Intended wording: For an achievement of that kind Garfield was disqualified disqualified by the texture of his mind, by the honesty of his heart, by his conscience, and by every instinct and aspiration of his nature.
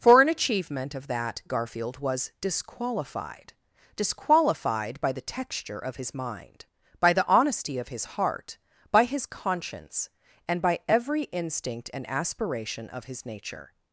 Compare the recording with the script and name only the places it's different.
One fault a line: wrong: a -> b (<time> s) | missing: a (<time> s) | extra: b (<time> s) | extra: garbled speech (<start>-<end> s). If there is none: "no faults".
missing: kind (1.4 s)